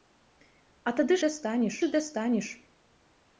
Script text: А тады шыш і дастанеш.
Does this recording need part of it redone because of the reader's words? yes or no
yes